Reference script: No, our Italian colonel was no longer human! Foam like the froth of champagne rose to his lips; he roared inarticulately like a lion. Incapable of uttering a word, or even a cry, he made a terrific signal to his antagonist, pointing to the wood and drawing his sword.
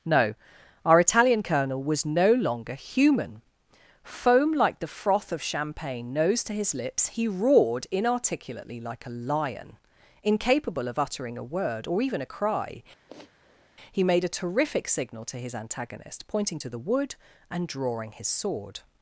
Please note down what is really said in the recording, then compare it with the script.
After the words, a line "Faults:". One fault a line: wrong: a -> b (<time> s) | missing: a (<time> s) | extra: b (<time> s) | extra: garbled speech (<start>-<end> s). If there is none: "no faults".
No, our Italian colonel was no longer human! Foam like the froth of champagne nose to his lips; he roared inarticulately like a lion. Incapable of uttering a word, or even a cry, he made a terrific signal to his antagonist, pointing to the wood and drawing his sword.
Faults:
wrong: rose -> nose (6.1 s)